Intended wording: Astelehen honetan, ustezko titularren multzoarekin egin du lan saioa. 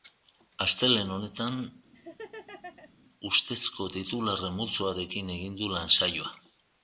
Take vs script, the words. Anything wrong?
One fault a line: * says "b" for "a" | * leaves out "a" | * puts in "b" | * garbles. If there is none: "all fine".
all fine